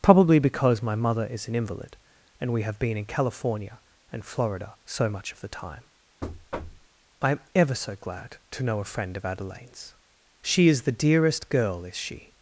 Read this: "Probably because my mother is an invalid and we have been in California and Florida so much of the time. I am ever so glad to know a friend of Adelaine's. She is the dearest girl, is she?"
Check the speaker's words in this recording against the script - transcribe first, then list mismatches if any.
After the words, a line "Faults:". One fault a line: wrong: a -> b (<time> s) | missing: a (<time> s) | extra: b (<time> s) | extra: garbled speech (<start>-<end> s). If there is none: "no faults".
"Probably because my mother is an invalid and we have been in California and Florida so much of the time. I am ever so glad to know a friend of Adelaine's. She is the dearest girl, is she?"
Faults:
no faults